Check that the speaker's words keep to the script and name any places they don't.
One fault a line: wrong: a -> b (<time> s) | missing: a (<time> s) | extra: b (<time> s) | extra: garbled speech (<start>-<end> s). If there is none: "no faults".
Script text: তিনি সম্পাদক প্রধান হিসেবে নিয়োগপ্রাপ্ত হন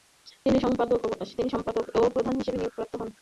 extra: ও (2.0 s)